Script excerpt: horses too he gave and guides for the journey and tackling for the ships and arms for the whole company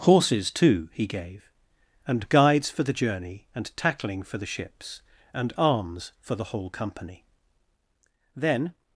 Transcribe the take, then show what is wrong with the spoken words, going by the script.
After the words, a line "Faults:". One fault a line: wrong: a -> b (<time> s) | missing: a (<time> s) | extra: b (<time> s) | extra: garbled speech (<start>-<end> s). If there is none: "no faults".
horses too he gave and guides for the journey and tackling for the ships and arms for the whole company then
Faults:
extra: then (8.3 s)